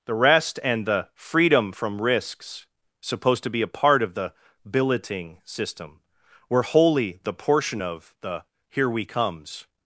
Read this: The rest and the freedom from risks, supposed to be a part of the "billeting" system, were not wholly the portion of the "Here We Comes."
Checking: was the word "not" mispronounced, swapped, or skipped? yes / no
yes